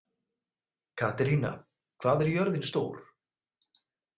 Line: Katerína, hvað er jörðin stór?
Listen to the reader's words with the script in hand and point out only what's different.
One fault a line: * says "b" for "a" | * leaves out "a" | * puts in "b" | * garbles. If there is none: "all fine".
all fine